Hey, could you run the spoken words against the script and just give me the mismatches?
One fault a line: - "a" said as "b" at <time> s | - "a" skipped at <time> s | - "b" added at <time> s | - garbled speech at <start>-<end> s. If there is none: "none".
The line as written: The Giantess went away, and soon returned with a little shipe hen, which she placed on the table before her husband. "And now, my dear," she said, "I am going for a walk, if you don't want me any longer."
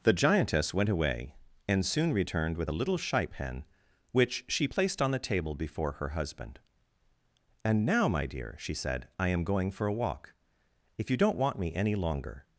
none